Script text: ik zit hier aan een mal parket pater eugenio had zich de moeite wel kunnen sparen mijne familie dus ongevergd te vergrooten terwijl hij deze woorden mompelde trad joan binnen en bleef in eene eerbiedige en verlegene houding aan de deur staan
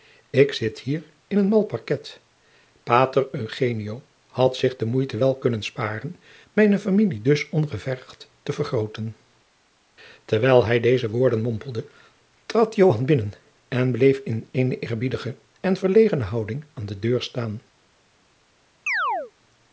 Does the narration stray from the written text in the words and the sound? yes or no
yes